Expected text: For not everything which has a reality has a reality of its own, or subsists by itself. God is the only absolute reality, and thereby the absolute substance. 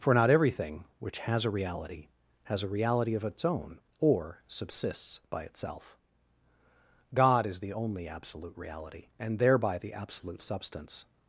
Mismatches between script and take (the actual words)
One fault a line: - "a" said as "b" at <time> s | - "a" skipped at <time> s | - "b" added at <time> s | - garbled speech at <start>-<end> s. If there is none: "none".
none